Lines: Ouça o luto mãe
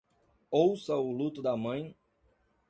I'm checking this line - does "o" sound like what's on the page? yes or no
yes